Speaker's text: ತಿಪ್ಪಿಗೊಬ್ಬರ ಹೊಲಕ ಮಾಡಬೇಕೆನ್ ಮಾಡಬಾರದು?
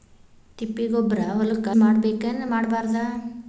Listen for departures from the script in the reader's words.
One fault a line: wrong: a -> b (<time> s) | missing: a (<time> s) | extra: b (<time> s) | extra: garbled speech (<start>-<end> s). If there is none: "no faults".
no faults